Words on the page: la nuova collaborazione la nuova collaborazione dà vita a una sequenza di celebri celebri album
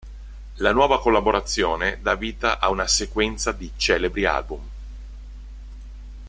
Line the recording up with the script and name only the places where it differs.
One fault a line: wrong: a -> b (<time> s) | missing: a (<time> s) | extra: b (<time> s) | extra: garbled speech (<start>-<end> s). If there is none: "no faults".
missing: la nuova collaborazione (2.0 s)
missing: celebri (4.2 s)